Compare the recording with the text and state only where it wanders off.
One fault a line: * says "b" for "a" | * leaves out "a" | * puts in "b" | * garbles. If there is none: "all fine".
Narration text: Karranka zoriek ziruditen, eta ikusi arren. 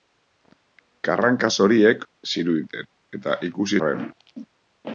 all fine